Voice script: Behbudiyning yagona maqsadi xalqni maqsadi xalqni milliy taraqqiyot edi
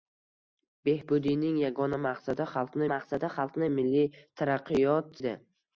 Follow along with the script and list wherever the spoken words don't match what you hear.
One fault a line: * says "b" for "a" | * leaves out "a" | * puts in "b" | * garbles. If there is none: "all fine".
all fine